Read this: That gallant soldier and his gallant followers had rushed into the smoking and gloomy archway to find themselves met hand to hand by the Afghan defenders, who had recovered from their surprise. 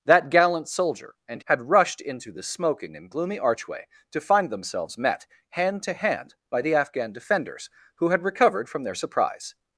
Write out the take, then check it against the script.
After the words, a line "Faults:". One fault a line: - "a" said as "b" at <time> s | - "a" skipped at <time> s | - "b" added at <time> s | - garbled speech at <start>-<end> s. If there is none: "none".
That gallant soldier and had rushed into the smoking and gloomy archway to find themselves met hand to hand by the Afghan defenders, who had recovered from their surprise.
Faults:
- "his gallant followers" skipped at 1.4 s